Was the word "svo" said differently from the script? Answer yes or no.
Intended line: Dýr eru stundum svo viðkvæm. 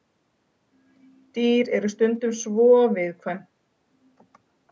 no